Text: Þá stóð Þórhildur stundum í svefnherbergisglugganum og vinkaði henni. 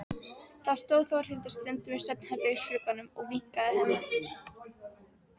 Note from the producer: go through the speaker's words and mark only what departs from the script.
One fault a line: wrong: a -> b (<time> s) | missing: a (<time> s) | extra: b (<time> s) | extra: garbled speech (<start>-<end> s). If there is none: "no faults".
no faults